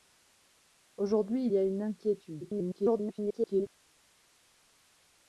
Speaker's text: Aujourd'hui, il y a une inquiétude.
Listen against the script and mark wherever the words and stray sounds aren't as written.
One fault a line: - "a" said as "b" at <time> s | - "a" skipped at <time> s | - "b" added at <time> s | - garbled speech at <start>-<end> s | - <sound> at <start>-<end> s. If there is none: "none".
- "il" skipped at 1.5 s
- garbled speech at 2.4-3.7 s